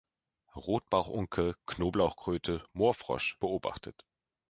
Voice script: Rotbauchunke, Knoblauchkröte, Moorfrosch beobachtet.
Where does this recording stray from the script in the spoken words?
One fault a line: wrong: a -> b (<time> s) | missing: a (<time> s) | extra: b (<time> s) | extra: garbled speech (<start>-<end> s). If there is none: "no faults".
no faults